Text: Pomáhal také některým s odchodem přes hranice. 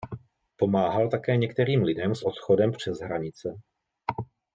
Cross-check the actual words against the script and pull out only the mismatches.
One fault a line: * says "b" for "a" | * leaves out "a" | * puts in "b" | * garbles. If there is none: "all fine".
* puts in "lidem"